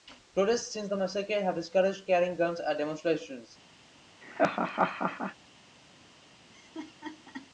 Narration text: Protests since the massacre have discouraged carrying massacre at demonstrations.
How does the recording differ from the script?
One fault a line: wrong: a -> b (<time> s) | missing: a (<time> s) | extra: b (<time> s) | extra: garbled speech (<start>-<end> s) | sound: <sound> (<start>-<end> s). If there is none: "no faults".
wrong: massacre -> guns (2.4 s)
sound: laugh (4.2-5.4 s)
sound: laugh (6.5-7.5 s)